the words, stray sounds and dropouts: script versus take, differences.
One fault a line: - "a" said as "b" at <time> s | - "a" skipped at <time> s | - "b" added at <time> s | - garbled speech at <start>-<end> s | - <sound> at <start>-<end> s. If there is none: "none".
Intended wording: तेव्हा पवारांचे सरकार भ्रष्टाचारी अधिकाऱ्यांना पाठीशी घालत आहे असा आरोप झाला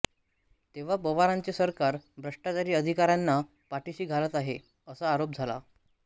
none